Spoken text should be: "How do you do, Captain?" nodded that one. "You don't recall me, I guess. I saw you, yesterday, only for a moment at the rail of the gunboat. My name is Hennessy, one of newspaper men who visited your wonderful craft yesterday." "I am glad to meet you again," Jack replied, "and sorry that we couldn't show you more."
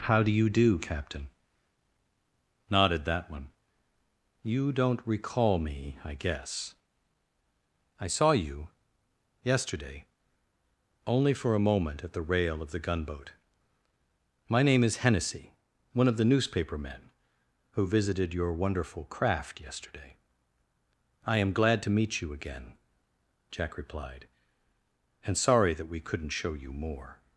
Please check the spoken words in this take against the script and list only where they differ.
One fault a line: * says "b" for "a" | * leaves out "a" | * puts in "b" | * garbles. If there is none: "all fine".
* puts in "the"